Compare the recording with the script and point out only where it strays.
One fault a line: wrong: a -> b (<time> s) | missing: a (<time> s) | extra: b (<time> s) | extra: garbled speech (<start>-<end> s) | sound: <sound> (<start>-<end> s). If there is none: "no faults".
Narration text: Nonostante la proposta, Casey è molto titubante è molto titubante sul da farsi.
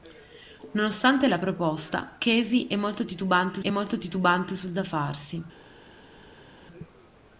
no faults